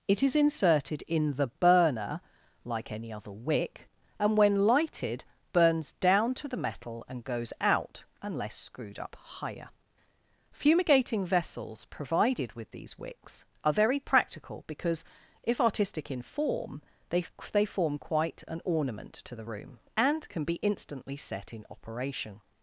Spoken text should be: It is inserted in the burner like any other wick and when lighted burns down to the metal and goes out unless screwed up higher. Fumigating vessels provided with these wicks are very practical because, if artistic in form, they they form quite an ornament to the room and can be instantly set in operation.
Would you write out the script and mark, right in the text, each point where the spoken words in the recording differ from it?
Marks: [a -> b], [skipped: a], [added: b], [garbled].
It is inserted in the burner like any other wick and when lighted burns down to the metal and goes out unless screwed up higher. Fumigating vessels provided with these wicks are very practical because, if artistic in form, they they form quite an ornament to the room and can be instantly set in operation.